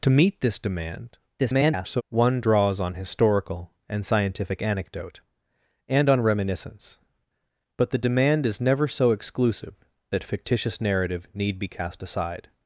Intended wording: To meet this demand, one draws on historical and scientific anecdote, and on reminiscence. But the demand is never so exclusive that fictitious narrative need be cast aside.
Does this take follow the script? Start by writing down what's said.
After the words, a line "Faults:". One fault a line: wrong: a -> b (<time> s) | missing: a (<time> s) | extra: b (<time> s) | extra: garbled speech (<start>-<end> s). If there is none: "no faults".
To meet this demand, [garbled] one draws on historical and scientific anecdote, and on reminiscence. But the demand is never so exclusive that fictitious narrative need be cast aside.
Faults:
extra: garbled speech (1.4-2.0 s)